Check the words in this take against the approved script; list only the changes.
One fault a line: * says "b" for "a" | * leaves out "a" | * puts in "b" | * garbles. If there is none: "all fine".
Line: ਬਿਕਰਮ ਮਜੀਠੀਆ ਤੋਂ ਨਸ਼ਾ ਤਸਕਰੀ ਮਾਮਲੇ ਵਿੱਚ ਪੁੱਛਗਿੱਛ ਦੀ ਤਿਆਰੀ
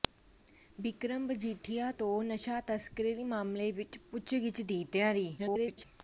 * garbles